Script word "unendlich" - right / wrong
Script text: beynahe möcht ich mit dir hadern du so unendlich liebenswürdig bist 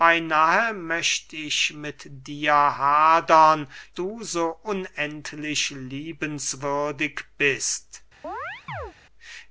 right